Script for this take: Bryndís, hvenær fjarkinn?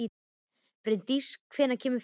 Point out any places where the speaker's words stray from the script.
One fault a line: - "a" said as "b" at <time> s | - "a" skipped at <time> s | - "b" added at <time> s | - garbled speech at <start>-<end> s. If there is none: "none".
- "kemur" added at 1.8 s